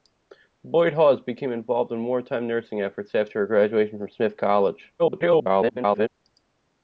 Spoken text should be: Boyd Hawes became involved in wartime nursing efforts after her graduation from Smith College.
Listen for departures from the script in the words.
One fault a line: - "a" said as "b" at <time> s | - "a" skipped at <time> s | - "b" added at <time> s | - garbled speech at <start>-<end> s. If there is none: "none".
- garbled speech at 5.0-6.1 s